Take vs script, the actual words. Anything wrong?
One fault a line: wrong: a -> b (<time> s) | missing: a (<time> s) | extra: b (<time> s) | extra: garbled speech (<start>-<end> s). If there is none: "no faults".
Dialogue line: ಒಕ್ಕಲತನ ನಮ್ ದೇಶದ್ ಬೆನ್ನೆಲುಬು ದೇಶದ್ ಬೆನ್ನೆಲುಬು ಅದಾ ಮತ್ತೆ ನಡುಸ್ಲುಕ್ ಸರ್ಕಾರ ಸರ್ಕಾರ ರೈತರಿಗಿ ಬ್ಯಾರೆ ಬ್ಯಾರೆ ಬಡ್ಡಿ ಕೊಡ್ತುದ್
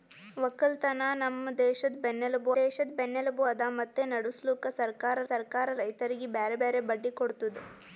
no faults